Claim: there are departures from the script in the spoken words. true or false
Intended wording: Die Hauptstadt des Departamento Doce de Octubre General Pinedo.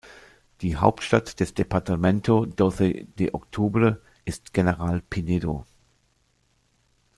true